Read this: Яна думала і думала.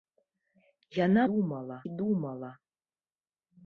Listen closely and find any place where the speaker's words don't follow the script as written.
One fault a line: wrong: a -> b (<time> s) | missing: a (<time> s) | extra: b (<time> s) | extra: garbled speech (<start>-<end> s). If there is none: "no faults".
no faults